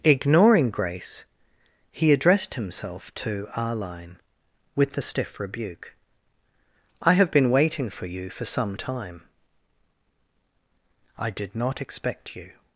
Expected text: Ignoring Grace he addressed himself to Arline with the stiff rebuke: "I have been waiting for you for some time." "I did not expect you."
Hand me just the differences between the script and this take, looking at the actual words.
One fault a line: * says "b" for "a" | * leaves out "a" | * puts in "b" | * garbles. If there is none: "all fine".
all fine